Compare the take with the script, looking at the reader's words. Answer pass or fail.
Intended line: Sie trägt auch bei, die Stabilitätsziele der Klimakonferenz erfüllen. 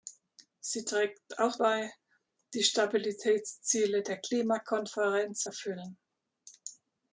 pass